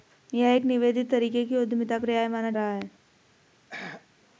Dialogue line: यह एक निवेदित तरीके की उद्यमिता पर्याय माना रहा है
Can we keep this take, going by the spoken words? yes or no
yes